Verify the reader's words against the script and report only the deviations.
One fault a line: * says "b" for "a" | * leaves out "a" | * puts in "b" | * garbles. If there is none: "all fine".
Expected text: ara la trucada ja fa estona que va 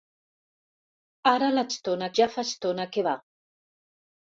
* says "estona" for "trucada"